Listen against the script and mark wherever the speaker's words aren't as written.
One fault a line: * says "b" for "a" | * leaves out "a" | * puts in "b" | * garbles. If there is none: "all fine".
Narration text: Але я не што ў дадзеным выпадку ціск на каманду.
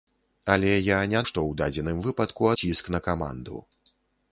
all fine